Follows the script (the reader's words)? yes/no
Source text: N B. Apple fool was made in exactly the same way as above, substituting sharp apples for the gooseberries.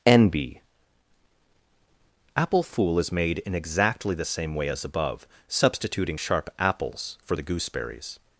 no